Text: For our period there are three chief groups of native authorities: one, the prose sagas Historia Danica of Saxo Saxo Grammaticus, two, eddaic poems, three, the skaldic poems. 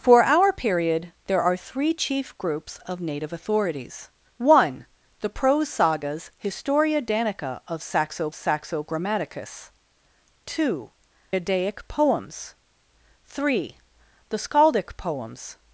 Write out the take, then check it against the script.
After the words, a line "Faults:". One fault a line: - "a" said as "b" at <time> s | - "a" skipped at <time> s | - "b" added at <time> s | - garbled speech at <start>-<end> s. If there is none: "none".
For our period there are three chief groups of native authorities: one, the prose sagas Historia Danica of Saxo Saxo Grammaticus, two, eddaic poems, three, the skaldic poems.
Faults:
none